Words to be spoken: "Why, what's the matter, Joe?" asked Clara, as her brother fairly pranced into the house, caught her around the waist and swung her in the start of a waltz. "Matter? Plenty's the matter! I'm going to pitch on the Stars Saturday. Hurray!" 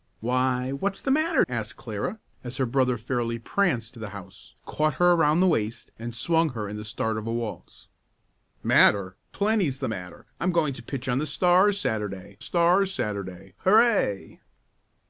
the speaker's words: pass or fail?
fail